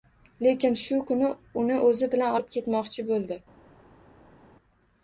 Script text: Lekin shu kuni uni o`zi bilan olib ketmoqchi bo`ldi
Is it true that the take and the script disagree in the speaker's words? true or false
false